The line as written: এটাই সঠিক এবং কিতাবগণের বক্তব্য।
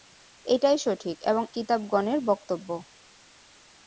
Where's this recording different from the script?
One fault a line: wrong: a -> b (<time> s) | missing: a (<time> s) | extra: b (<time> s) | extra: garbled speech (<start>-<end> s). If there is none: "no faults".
no faults